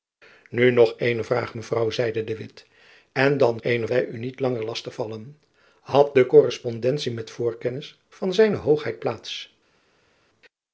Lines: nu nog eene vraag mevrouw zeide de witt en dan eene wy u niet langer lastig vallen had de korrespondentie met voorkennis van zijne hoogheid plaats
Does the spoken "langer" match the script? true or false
true